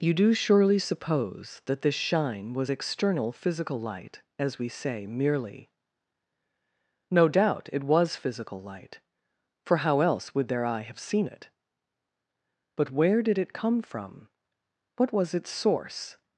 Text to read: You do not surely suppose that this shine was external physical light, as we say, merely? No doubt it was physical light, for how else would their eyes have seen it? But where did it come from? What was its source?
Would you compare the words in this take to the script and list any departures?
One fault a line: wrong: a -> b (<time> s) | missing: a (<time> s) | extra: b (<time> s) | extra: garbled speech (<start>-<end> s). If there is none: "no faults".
missing: not (0.3 s)
wrong: eyes -> eye (10.6 s)